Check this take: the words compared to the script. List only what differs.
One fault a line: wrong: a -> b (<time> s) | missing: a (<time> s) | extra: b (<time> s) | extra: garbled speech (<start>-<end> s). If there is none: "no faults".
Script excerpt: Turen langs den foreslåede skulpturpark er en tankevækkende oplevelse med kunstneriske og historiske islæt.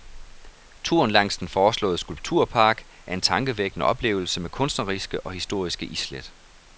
no faults